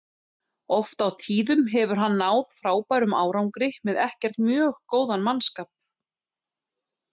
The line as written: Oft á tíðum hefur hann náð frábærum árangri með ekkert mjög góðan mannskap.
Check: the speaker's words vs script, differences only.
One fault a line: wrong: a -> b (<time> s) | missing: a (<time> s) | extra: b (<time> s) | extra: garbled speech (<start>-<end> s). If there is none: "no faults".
no faults